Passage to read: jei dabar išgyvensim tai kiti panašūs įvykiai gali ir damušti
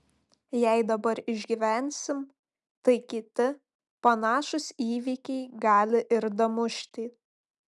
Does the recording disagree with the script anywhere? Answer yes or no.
no